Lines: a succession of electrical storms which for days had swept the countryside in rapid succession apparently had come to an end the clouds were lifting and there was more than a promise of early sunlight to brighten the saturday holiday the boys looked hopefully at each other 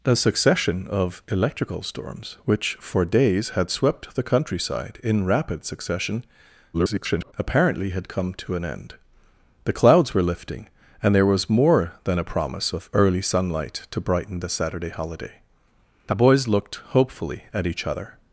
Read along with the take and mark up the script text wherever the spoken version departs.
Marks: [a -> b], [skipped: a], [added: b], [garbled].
a succession of electrical storms which for days had swept the countryside in rapid succession [garbled] apparently had come to an end the clouds were lifting and there was more than a promise of early sunlight to brighten the saturday holiday the boys looked hopefully at each other